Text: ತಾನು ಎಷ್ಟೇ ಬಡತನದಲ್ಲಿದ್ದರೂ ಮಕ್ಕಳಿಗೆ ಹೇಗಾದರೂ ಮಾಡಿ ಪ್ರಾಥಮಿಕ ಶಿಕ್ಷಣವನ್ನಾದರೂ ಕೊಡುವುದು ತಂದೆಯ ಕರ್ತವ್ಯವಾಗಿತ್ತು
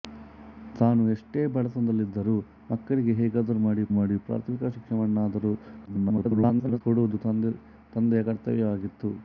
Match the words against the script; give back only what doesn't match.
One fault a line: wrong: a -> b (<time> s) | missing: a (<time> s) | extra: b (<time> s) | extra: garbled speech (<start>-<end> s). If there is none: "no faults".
extra: ಮಾಡಿ (3.9 s)
extra: garbled speech (5.9-6.8 s)